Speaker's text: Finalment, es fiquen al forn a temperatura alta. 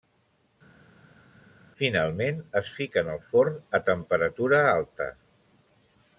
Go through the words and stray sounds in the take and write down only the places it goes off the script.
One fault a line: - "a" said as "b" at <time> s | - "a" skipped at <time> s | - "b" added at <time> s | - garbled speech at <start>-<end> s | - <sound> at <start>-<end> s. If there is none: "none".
none